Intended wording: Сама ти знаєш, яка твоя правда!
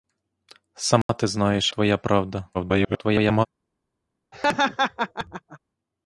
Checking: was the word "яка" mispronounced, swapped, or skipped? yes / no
yes